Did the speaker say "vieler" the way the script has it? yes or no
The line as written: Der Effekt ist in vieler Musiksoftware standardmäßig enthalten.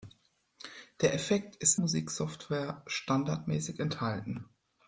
no